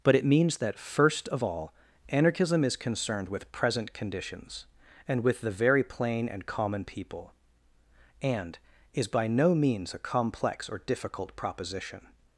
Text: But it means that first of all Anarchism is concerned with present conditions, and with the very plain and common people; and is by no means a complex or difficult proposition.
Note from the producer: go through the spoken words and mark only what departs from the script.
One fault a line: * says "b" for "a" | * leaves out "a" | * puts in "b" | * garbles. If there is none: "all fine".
all fine